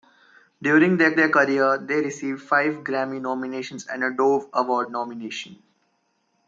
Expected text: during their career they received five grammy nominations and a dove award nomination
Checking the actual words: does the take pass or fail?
fail